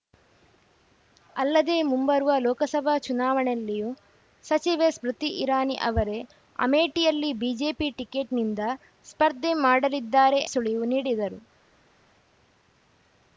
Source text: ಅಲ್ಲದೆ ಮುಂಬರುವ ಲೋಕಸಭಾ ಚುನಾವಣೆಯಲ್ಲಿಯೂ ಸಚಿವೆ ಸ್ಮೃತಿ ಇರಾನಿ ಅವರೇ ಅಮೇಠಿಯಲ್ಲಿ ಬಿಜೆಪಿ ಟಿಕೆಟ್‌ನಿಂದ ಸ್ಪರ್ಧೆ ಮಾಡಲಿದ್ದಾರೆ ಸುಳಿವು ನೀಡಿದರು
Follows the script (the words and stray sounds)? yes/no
yes